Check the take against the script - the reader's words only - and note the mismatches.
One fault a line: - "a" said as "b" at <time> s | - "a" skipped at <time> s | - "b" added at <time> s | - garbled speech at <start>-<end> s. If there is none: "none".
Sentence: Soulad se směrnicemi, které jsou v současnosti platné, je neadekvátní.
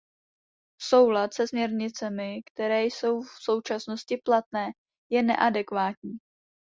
none